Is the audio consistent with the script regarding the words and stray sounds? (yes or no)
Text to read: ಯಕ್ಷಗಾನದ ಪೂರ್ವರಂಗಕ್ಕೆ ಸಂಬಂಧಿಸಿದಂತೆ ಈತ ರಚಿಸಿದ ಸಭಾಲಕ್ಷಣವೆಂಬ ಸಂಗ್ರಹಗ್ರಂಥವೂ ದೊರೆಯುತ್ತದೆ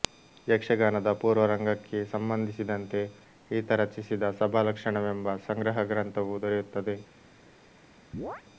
no